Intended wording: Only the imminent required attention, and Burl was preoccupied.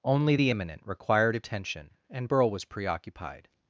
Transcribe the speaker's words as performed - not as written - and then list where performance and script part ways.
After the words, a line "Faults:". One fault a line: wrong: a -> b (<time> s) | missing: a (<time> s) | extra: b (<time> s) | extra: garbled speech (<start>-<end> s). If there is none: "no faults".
Only the imminent required attention, and Burl was preoccupied.
Faults:
no faults